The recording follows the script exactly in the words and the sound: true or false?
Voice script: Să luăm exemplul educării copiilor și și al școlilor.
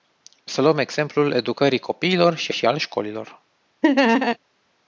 false